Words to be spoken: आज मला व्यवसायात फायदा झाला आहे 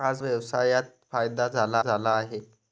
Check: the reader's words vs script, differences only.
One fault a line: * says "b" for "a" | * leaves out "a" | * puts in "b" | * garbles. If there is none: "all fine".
* leaves out "मला"
* puts in "झाला"